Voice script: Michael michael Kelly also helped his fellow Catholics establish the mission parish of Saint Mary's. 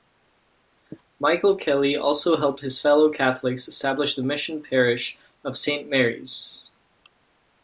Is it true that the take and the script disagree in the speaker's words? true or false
true